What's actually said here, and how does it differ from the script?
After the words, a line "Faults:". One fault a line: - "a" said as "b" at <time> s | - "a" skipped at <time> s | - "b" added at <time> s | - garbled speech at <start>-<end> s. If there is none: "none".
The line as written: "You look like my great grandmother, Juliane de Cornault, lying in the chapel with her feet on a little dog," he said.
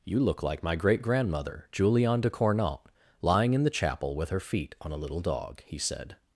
"You look like my great grandmother, Juliane de Cornault, lying in the chapel with her feet on a little dog," he said.
Faults:
none